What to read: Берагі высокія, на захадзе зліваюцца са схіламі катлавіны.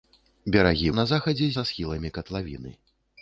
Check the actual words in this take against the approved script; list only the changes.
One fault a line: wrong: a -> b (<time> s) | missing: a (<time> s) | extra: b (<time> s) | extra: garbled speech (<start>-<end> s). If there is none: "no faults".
missing: высокія (0.9 s)
missing: зліваюцца (1.5 s)